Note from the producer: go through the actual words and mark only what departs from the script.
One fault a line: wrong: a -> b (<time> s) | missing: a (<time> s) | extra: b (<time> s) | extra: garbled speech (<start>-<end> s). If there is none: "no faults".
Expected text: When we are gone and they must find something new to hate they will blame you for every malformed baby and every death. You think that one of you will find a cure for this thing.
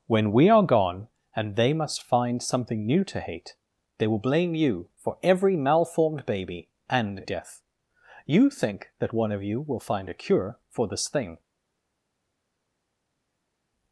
missing: every (7.2 s)